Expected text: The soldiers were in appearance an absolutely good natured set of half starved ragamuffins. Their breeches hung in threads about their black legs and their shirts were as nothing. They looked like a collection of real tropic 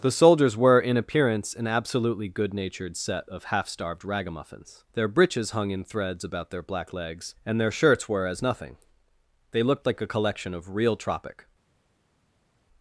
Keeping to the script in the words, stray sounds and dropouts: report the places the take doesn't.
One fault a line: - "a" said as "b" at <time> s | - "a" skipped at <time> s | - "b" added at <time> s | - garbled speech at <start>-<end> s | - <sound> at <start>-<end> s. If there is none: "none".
none